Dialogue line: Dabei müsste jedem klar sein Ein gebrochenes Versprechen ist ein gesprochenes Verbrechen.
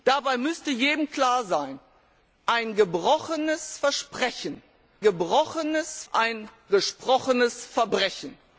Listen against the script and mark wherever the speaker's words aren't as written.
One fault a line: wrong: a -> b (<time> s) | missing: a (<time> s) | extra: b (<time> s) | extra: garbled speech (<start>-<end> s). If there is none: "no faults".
wrong: ist -> gebrochenes (5.0 s)